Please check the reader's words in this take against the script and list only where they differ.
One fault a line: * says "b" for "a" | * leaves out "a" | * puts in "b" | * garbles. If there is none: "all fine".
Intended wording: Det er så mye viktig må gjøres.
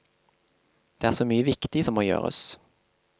* puts in "som"